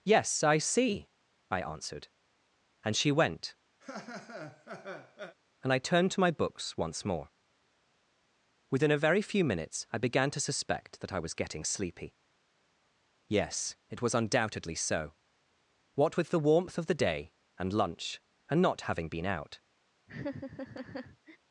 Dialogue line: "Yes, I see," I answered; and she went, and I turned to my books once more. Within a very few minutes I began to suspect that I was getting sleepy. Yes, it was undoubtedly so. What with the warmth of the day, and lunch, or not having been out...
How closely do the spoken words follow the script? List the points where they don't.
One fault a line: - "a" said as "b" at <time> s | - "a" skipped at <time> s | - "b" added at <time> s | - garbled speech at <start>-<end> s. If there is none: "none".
- "or" said as "and" at 18.5 s